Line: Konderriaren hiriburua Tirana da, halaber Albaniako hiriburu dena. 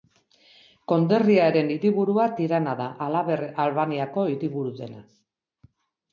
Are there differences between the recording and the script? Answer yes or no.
no